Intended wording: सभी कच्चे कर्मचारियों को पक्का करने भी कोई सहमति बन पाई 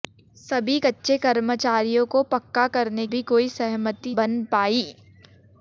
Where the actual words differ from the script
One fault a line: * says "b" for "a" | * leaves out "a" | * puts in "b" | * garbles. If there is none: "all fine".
all fine